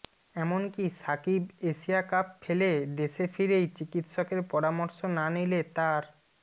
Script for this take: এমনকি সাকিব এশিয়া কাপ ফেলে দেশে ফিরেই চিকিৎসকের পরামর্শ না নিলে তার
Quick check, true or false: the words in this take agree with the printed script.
true